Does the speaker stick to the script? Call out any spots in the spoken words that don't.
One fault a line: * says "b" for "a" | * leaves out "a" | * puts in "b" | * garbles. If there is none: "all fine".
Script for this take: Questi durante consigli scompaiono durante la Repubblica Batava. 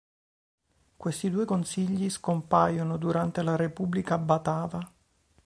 * says "due" for "durante"